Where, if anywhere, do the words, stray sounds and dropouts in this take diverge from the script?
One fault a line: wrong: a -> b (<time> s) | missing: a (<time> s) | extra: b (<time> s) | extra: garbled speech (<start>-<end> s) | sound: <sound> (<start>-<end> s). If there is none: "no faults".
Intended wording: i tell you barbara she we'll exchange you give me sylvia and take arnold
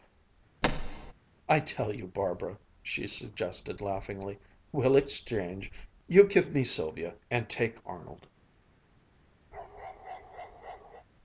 sound: thud (0.6-1.1 s)
extra: suggested laughingly (3.0 s)
sound: bark (9.5-11.1 s)